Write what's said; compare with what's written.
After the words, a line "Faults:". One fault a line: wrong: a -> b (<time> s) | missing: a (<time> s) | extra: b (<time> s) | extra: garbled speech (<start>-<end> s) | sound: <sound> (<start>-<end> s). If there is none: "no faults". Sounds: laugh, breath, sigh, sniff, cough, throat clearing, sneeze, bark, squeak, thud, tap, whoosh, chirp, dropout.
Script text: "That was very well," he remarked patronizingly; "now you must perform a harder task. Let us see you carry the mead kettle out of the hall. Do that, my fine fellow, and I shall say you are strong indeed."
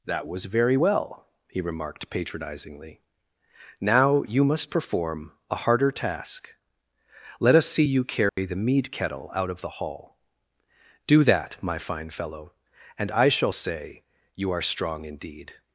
"That was very well," he remarked patronizingly; "now you must perform a harder task. Let us see you carry the mead kettle out of the hall. Do that, my fine fellow, and I shall say you are strong indeed."
Faults:
sound: dropout (8.3-8.4 s)